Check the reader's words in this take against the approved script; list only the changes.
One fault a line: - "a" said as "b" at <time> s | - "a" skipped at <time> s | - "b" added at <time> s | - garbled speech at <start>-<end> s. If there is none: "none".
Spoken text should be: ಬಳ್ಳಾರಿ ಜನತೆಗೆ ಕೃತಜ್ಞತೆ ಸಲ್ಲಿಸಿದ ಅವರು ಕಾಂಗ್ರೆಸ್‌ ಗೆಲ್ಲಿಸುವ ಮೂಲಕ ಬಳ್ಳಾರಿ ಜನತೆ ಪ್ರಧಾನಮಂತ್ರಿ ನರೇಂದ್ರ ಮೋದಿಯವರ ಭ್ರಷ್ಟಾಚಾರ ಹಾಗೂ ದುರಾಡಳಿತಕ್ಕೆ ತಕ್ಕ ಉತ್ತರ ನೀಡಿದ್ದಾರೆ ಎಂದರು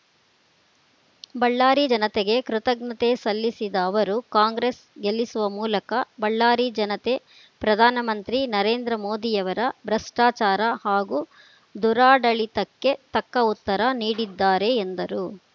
none